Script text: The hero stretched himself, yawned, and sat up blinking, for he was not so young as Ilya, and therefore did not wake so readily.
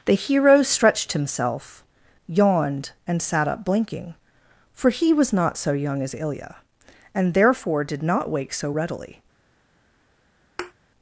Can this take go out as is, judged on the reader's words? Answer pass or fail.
pass